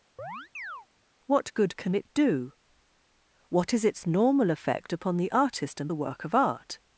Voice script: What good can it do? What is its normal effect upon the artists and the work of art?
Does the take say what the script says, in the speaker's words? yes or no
no